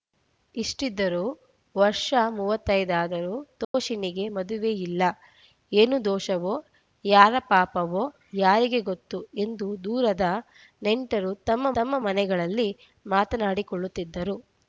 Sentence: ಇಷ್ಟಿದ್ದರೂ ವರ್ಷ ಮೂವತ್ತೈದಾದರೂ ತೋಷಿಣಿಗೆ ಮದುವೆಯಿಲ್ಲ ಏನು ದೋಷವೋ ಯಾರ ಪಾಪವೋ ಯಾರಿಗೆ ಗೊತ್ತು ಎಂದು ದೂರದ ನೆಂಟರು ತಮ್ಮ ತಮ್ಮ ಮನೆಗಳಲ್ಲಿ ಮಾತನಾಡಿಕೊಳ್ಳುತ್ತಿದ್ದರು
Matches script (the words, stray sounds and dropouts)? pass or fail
fail